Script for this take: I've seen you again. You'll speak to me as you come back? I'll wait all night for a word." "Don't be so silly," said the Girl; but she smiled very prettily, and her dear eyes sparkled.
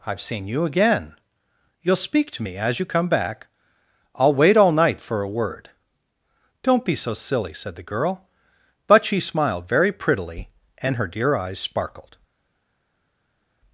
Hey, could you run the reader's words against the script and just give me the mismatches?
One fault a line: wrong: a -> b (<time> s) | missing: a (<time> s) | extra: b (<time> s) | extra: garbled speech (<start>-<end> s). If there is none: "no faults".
no faults